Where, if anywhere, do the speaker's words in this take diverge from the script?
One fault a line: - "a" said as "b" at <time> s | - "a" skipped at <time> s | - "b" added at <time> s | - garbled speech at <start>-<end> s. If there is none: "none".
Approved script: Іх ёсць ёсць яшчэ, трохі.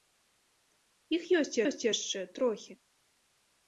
none